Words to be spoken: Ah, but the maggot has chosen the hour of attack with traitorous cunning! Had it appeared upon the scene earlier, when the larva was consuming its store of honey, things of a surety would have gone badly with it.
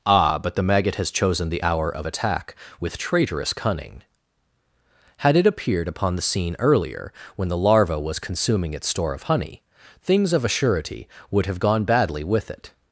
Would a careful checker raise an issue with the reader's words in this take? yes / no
no